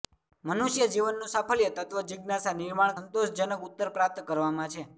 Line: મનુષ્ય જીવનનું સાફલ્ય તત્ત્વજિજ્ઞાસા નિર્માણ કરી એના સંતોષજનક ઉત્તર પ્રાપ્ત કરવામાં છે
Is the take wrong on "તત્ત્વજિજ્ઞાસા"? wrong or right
right